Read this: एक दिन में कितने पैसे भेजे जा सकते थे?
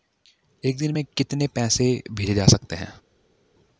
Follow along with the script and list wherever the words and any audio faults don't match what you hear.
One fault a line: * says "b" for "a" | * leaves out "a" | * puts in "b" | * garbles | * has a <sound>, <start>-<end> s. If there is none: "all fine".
* says "हैं" for "थे"